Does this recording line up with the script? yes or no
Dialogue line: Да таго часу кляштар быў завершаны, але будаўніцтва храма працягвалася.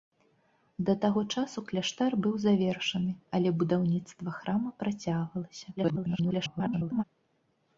no